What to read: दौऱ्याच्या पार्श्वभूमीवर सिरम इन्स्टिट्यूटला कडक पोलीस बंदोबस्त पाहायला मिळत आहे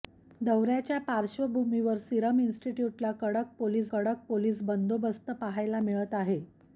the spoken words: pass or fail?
fail